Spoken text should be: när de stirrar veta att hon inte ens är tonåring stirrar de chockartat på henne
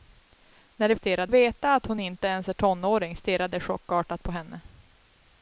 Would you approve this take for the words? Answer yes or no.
yes